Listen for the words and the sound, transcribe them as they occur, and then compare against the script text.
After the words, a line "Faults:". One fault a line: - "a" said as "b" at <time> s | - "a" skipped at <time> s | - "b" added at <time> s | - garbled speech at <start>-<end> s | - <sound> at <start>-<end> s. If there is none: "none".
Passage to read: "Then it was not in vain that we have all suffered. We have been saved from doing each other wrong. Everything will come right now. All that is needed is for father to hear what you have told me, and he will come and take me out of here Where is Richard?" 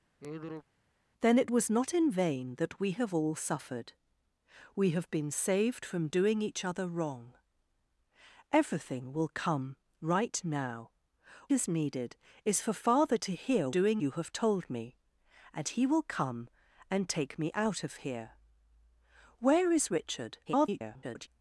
"Then it was not in vain that we have all suffered. We have been saved from doing each other wrong. Everything will come right now. Is needed is for father to hear doing you have told me, and he will come and take me out of here Where is Richard?" [garbled]
Faults:
- sigh at 0.2-0.6 s
- "All that" skipped at 10.9 s
- "what" said as "doing" at 13.7 s
- garbled speech at 20.5-21.3 s